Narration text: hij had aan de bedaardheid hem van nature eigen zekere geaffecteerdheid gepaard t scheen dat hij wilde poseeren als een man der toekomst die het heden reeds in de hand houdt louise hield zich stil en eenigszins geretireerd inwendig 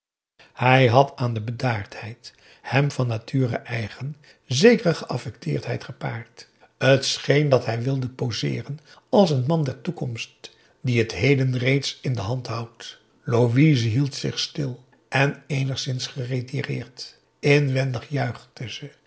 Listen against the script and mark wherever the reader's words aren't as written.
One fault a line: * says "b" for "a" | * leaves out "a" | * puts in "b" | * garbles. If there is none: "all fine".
all fine